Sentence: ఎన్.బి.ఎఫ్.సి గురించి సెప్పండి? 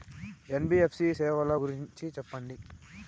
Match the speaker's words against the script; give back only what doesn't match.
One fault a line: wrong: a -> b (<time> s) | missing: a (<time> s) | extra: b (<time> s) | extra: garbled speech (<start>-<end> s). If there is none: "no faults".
extra: సేవల (1.1 s)